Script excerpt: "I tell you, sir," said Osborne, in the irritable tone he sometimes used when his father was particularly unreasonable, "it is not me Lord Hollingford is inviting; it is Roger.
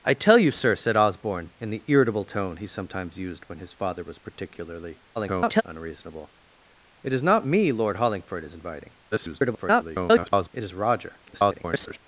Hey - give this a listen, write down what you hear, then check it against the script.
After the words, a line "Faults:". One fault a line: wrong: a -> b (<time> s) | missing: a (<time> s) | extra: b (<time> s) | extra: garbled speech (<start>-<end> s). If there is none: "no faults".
"I tell you, sir," said Osborne, in the irritable tone he sometimes used when his father was particularly [garbled] unreasonable, "it is not me Lord Hollingford is inviting; [garbled] it is Roger. [garbled]
Faults:
extra: garbled speech (5.2-5.6 s)
extra: garbled speech (9.1-10.5 s)
extra: garbled speech (11.2-12.0 s)